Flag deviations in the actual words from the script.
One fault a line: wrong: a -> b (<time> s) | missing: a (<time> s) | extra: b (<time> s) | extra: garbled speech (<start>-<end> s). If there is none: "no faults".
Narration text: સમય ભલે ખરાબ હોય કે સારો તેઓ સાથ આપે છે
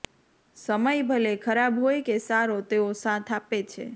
no faults